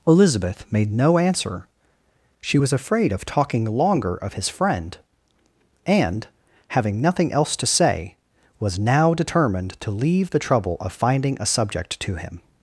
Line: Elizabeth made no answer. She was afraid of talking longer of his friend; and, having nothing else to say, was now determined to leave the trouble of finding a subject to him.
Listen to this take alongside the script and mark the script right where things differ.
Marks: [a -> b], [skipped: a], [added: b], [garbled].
Elizabeth made no answer. She was afraid of talking longer of his friend; and, having nothing else to say, was now determined to leave the trouble of finding a subject to him.